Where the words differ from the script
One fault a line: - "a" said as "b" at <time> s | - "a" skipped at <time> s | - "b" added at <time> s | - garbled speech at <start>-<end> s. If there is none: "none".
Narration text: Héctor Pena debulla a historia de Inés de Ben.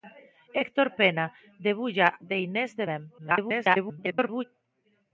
- "a historia" skipped at 2.2 s
- garbled speech at 3.2-4.4 s